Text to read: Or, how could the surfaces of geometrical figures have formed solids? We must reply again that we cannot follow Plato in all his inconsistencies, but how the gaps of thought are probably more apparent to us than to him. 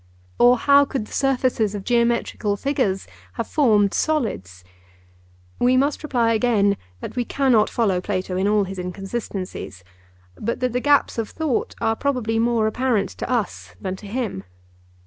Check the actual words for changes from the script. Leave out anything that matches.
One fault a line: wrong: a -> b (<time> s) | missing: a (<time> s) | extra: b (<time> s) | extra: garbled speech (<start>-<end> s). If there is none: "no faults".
wrong: how -> that (10.6 s)